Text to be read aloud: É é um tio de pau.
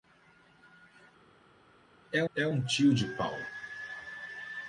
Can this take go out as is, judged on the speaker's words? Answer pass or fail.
pass